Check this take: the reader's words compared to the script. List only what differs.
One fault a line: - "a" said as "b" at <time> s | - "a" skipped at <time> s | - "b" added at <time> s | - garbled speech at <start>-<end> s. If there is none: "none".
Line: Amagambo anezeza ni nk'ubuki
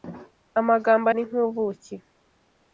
- "anezeza" skipped at 1.1 s